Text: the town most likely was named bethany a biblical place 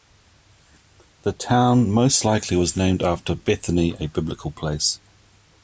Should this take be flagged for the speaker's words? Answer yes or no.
yes